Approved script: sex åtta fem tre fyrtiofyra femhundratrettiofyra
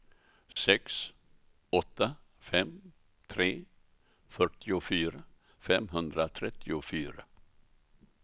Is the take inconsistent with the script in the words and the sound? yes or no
yes